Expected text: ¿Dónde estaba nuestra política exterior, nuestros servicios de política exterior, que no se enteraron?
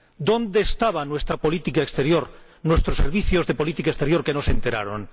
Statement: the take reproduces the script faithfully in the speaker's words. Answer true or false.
true